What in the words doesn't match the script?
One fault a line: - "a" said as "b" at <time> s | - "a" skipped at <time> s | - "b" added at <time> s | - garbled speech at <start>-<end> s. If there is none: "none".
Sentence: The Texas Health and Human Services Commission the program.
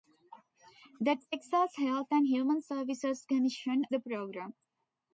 none